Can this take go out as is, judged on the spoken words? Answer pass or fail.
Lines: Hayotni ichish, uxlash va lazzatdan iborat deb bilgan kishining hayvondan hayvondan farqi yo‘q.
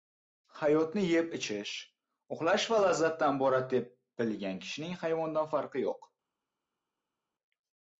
fail